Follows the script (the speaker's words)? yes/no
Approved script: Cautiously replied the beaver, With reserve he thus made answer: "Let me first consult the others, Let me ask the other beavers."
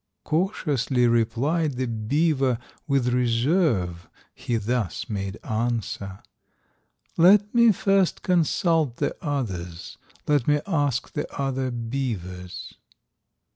yes